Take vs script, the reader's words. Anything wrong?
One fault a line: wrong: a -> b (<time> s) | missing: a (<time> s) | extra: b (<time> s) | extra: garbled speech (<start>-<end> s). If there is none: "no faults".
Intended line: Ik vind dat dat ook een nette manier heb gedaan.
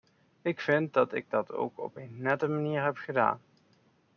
extra: ik (1.1 s)
extra: op (1.8 s)